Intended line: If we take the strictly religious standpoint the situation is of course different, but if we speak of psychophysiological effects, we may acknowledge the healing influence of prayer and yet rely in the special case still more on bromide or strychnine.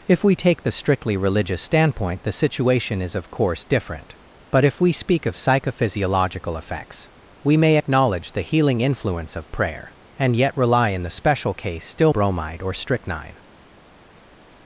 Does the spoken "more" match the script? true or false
false